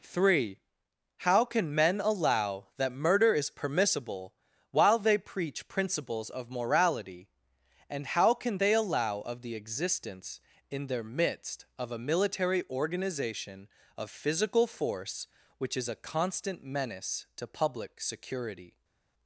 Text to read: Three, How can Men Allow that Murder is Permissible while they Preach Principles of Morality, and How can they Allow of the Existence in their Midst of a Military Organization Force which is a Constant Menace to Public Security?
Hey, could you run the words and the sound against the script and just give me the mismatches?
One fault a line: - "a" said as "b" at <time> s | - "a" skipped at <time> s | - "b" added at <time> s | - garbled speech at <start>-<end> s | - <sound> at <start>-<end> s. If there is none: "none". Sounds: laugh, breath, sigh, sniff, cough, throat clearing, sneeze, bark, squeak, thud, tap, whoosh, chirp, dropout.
- "of Physical" added at 14.0 s